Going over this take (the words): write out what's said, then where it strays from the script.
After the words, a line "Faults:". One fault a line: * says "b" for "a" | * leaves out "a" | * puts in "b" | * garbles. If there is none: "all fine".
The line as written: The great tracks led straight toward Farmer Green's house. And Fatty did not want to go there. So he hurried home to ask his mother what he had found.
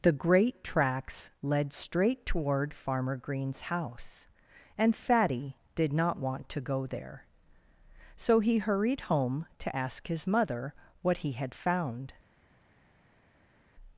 The great tracks led straight toward Farmer Green's house. And Fatty did not want to go there. So he hurried home to ask his mother what he had found.
Faults:
all fine